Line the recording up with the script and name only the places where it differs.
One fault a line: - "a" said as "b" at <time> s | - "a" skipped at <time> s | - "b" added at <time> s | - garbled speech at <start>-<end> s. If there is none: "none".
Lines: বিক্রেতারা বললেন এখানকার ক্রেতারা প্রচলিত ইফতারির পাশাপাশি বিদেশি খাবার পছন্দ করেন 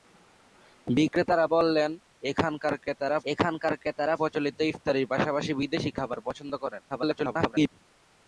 - "এখানকার ক্রেতারা" added at 3.3 s
- garbled speech at 6.9-7.7 s